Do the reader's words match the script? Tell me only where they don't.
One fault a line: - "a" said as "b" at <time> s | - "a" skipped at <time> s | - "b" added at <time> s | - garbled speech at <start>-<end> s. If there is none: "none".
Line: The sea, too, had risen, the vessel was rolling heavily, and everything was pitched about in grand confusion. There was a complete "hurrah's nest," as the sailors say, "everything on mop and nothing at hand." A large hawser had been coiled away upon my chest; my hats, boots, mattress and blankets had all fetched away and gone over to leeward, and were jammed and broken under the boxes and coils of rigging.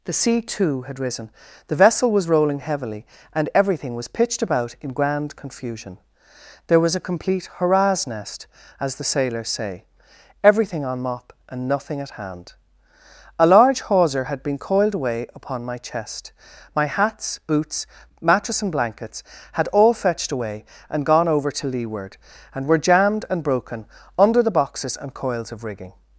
none